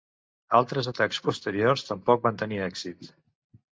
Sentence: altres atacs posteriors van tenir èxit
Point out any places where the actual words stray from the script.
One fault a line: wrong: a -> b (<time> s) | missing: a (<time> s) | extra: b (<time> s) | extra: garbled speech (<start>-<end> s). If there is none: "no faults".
extra: tampoc (1.9 s)